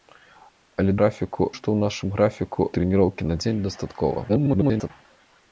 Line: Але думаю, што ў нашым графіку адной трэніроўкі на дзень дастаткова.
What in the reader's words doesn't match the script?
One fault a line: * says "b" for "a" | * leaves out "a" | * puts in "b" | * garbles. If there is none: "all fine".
* says "графіку" for "думаю"
* leaves out "адной"
* garbles